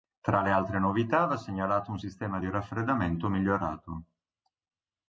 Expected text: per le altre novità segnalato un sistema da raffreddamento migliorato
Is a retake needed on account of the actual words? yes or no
yes